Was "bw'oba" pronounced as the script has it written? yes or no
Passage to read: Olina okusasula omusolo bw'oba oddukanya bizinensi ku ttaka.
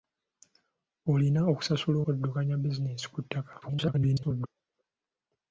no